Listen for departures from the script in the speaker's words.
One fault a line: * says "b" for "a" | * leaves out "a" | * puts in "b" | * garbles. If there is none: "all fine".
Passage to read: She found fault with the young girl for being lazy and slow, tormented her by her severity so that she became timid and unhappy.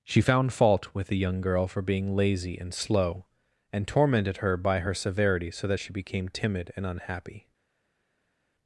* puts in "and"